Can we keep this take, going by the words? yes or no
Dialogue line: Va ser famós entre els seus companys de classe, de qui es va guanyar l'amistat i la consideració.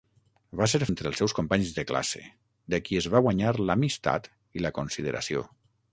no